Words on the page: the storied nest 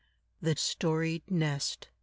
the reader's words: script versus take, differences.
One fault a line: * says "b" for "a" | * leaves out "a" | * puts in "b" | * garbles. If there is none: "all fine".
all fine